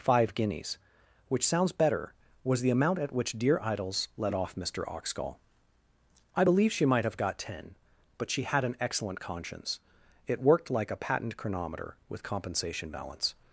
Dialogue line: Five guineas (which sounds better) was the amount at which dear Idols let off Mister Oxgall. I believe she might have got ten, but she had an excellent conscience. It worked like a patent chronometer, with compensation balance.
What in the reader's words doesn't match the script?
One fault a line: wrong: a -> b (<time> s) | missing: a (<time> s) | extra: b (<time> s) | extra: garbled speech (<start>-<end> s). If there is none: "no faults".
no faults